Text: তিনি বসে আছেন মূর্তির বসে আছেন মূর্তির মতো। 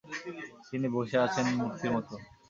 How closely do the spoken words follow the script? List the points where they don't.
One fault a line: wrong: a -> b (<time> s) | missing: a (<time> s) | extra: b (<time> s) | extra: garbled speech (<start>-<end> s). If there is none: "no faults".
missing: বসে আছেন মূর্তির (1.9 s)